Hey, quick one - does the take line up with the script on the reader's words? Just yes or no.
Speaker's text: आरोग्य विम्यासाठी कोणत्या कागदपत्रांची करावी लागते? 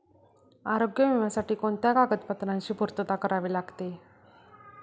no